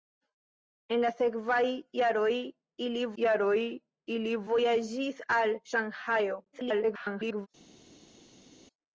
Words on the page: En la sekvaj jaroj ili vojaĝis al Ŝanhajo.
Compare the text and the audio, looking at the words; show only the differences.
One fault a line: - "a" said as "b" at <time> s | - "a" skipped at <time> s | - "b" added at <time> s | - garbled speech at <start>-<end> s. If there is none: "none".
- "jaroj ili" added at 3.2 s
- garbled speech at 6.5-7.5 s